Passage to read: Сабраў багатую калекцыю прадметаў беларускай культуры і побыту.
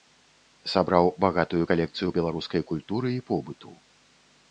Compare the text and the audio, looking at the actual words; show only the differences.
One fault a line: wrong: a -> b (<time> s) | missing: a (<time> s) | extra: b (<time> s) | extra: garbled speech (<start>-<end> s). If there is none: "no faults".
missing: прадметаў (2.1 s)